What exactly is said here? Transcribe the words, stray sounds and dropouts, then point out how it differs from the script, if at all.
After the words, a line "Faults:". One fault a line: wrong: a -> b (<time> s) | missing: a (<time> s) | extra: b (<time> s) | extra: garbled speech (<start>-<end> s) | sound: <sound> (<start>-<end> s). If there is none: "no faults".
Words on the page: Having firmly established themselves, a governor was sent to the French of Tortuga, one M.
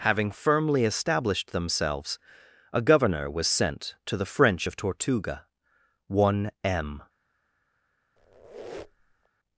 Having firmly established themselves, a governor was sent to the French of Tortuga, one M.
Faults:
sound: squeak (8.2-9.3 s)